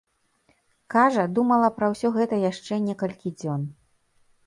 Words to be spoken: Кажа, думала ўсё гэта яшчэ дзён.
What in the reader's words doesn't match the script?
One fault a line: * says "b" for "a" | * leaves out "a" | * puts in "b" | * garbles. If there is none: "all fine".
* puts in "пра"
* puts in "некалькі"